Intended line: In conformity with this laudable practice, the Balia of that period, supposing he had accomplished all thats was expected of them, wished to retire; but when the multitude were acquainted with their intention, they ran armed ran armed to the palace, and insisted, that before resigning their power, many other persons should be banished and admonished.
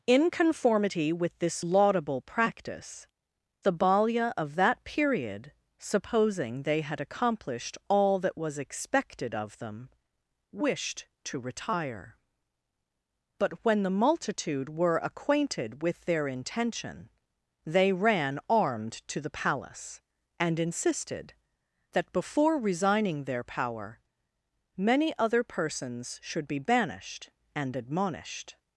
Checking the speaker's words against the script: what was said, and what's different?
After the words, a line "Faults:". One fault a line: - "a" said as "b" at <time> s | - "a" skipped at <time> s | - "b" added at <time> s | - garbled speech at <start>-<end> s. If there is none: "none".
In conformity with this laudable practice, the Balia of that period, supposing they had accomplished all that was expected of them, wished to retire; but when the multitude were acquainted with their intention, they ran armed to the palace, and insisted, that before resigning their power, many other persons should be banished and admonished.
Faults:
- "he" said as "they" at 6.6 s
- "thats" said as "that" at 8.2 s
- "ran armed" skipped at 19.0 s